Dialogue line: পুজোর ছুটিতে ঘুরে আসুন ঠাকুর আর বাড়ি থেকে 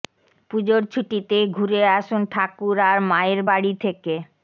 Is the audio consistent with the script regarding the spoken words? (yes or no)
no